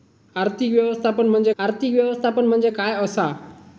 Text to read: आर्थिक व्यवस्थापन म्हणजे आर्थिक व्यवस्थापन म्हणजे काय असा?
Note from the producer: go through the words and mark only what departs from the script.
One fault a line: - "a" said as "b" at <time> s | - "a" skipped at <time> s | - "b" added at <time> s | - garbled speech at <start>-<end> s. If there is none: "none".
none